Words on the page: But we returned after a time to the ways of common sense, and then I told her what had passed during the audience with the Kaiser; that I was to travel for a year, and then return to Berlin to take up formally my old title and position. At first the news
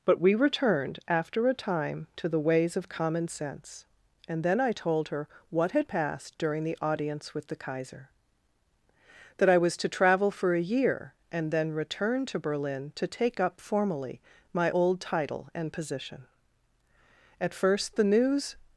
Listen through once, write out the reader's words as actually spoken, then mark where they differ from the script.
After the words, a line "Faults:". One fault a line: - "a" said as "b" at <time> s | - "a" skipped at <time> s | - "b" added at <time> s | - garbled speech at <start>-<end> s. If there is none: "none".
But we returned after a time to the ways of common sense, and then I told her what had passed during the audience with the Kaiser; that I was to travel for a year, and then return to Berlin to take up formally my old title and position. At first the news
Faults:
none